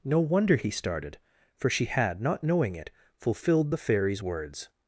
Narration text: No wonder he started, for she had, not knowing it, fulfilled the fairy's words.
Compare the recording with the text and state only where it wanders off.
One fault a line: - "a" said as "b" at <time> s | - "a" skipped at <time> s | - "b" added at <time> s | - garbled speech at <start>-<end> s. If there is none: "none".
none